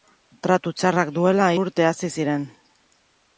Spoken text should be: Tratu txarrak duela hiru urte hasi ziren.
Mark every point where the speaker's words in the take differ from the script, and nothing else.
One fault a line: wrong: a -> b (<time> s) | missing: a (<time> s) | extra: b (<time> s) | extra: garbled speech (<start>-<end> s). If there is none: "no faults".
missing: hiru (1.5 s)